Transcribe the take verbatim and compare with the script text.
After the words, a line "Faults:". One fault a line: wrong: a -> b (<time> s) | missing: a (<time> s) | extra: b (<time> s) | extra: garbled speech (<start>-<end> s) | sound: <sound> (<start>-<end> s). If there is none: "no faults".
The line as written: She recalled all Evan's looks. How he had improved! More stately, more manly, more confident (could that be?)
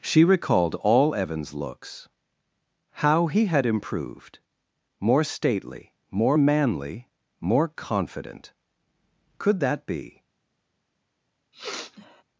She recalled all Evan's looks. How he had improved! More stately, more manly, more confident (could that be?)
Faults:
sound: sniff (11.5-12.2 s)